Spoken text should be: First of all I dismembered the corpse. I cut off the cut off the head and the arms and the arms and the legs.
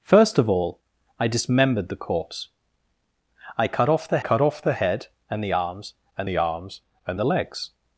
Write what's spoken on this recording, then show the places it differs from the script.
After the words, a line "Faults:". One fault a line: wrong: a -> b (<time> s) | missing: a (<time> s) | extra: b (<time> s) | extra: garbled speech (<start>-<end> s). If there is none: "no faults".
First of all I dismembered the corpse. I cut off the cut off the head and the arms and the arms and the legs.
Faults:
no faults